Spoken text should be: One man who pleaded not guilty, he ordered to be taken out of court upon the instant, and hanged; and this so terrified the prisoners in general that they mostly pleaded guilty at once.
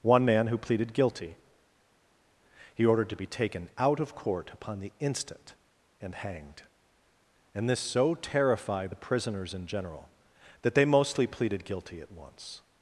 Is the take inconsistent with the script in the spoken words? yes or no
yes